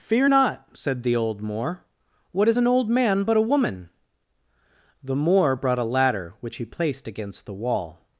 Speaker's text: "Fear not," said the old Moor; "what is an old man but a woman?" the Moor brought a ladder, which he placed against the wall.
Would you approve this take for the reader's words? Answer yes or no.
yes